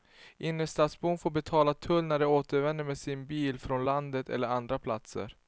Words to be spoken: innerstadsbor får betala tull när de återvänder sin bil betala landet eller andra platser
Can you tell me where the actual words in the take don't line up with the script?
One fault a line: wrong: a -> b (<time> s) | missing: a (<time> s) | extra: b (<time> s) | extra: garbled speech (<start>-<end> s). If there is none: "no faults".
extra: med (2.8 s)
wrong: betala -> från (3.6 s)